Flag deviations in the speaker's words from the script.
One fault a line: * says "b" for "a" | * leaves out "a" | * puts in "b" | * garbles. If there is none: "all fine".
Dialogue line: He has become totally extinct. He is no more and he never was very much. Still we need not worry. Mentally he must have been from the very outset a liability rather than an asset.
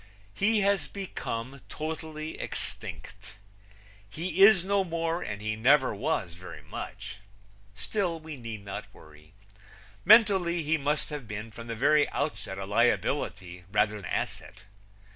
* leaves out "than an"